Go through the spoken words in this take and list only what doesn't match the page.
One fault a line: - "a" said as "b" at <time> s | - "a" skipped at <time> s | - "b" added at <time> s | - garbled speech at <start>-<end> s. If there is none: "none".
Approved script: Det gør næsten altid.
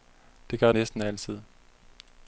none